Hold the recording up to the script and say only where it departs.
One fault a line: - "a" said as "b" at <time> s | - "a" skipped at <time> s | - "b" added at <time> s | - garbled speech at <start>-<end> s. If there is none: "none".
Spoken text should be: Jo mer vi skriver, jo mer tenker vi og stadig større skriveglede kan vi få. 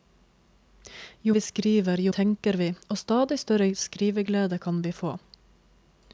- "mer" skipped at 1.4 s
- "mer" skipped at 2.1 s